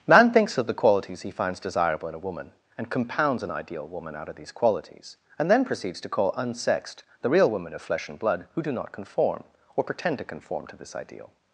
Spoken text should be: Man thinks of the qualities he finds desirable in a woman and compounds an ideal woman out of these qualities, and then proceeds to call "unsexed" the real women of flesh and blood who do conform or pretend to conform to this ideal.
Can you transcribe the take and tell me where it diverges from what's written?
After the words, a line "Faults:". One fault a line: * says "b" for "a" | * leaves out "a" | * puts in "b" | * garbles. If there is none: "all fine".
Man thinks of the qualities he finds desirable in a woman and compounds an ideal woman out of these qualities, and then proceeds to call "unsexed" the real women of flesh and blood who do not conform or pretend to conform to this ideal.
Faults:
* puts in "not"